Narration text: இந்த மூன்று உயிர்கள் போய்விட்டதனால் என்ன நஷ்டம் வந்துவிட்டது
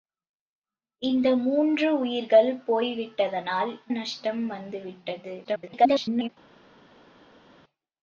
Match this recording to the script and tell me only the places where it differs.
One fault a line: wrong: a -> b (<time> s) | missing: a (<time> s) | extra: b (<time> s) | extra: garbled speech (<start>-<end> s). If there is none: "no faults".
missing: என்ன (3.7 s)
extra: garbled speech (5.4-6.3 s)